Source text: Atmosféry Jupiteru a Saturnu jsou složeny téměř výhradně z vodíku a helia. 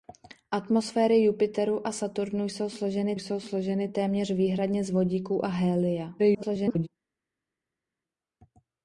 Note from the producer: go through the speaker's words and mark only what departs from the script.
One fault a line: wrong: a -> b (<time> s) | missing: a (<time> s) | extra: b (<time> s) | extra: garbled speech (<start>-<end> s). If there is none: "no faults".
extra: jsou složeny (3.1 s)
extra: garbled speech (6.2-6.9 s)